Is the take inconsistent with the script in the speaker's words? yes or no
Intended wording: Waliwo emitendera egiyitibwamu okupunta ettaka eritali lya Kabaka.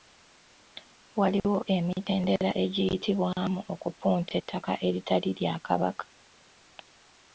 no